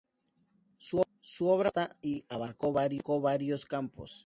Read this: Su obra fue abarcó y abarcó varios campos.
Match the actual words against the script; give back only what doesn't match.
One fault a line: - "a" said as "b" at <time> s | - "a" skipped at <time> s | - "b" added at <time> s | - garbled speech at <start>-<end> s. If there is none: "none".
- "abarcó" said as "vasta" at 1.8 s